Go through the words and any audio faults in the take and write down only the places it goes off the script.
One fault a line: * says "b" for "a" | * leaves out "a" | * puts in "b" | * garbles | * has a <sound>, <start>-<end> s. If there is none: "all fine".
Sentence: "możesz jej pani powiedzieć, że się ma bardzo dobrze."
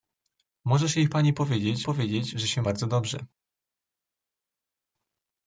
* puts in "powiedzieć"
* leaves out "ma"